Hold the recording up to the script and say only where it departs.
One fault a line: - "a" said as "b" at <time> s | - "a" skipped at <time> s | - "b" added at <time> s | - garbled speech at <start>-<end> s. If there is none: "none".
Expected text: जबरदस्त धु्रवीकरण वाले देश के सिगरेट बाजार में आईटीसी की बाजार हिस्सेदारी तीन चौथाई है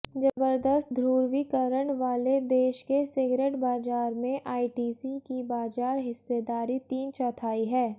none